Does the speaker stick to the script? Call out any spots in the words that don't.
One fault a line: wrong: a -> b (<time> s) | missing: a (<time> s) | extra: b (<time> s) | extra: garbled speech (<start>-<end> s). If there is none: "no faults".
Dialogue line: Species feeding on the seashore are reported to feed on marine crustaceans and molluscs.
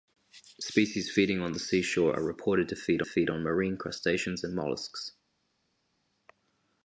extra: feed (3.0 s)